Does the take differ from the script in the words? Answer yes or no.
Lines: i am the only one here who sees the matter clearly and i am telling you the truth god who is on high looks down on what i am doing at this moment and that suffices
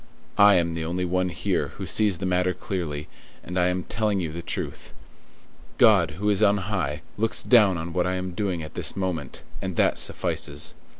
no